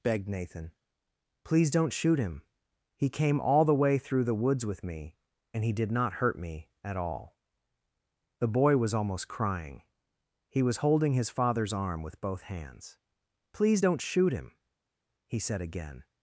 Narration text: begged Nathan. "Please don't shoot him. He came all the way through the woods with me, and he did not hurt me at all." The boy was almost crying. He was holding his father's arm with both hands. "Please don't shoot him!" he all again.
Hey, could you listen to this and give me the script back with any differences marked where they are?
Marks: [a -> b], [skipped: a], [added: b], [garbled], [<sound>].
begged Nathan. "Please don't shoot him. He came all the way through the woods with me, and he did not hurt me at all." The boy was almost crying. He was holding his father's arm with both hands. "Please don't shoot him!" he [all -> said] again.